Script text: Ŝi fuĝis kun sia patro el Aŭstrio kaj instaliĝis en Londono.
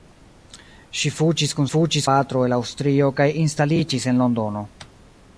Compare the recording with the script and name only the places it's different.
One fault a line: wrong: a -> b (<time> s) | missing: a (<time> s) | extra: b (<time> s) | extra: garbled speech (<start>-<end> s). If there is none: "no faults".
wrong: sia -> fuĝis (1.7 s)